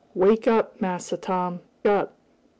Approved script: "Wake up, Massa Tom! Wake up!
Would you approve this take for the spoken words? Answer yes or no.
no